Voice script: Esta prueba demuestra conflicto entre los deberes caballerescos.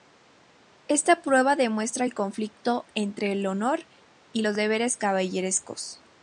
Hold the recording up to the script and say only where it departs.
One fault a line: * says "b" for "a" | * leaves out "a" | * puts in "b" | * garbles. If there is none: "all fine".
* puts in "el"
* puts in "el honor y"